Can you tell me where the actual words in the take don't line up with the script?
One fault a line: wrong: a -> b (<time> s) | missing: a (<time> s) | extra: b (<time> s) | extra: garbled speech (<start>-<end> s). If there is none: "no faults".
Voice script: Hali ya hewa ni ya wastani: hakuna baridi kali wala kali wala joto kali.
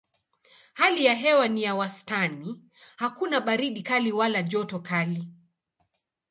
missing: kali wala (4.4 s)